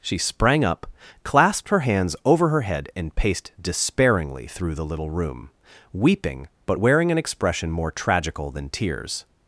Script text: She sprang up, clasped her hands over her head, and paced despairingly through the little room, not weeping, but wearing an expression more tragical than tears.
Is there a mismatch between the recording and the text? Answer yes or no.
yes